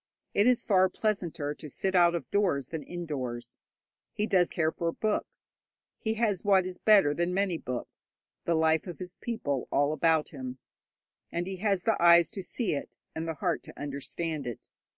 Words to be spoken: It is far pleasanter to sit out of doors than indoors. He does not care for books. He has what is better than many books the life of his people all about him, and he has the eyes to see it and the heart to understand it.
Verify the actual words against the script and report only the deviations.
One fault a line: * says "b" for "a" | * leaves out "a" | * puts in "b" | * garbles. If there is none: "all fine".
* leaves out "not"